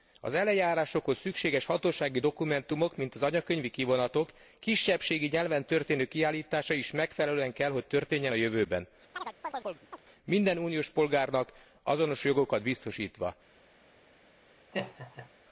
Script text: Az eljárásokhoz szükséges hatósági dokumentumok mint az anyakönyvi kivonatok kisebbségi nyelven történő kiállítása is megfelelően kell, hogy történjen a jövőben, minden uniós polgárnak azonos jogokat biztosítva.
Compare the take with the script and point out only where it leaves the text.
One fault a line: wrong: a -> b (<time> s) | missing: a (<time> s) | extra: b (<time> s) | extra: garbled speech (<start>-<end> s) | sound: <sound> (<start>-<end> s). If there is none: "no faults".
sound: chirp (9.1-10.0 s)
sound: laugh (14.7-15.3 s)